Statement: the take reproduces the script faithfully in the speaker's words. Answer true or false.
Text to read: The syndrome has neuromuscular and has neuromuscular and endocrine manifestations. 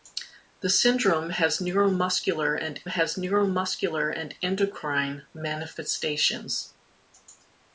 true